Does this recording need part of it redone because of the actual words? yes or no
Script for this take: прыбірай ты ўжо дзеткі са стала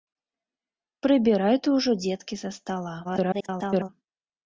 yes